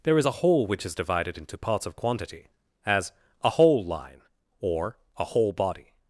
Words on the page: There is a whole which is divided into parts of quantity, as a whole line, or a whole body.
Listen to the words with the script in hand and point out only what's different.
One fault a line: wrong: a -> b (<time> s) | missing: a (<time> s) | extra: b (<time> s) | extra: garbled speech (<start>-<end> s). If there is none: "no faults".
no faults